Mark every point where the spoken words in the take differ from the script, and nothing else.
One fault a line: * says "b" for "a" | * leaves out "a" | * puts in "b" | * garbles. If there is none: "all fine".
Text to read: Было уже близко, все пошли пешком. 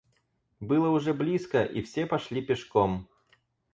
* puts in "и"